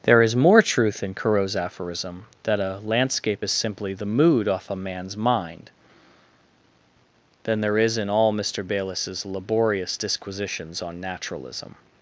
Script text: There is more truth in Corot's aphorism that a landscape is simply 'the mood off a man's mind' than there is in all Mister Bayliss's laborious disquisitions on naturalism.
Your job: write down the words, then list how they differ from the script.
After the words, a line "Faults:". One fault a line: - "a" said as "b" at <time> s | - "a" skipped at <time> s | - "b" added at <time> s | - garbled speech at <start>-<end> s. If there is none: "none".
There is more truth in Corot's aphorism that a landscape is simply 'the mood off a man's mind' than there is in all Mister Bayliss's laborious disquisitions on naturalism.
Faults:
none